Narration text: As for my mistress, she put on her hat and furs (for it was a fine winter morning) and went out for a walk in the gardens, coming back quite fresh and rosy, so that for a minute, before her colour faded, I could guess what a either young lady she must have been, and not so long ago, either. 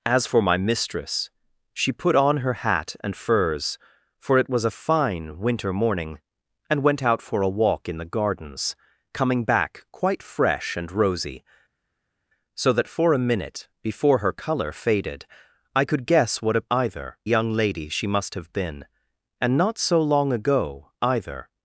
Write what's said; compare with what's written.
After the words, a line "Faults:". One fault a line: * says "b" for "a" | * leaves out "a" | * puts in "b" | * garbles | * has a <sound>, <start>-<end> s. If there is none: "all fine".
As for my mistress, she put on her hat and furs (for it was a fine winter morning) and went out for a walk in the gardens, coming back quite fresh and rosy, so that for a minute, before her colour faded, I could guess what a either young lady she must have been, and not so long ago, either.
Faults:
all fine